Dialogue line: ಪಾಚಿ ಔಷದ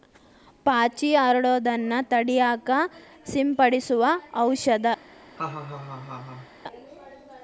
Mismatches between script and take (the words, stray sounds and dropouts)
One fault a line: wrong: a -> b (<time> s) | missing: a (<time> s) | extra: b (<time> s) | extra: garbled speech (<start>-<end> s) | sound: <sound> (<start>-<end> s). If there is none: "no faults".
extra: ಹರಡುದನ್ನ ತಡಿಯಾಕ ಸಿಂಪಡಿಸು (1.1 s)
sound: laugh (5.4-6.5 s)